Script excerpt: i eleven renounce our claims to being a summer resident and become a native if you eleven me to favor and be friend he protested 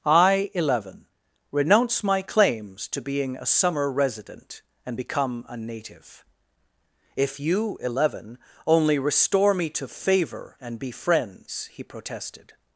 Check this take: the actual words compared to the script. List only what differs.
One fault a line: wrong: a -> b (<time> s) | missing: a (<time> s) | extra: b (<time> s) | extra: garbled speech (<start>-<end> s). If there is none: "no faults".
wrong: our -> my (2.0 s)
extra: only restore (8.7 s)
wrong: friend -> friends (10.9 s)